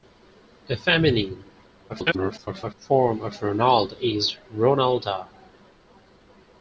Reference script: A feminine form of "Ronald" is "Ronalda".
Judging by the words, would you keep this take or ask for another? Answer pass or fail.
fail